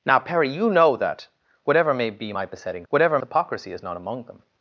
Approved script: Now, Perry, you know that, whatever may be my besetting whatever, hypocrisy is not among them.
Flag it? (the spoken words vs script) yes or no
no